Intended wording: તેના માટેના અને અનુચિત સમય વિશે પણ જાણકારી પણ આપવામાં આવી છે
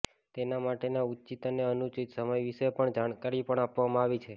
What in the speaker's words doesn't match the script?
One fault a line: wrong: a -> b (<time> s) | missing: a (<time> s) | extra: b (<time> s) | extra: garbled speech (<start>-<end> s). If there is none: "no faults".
extra: ઉચિત (1.1 s)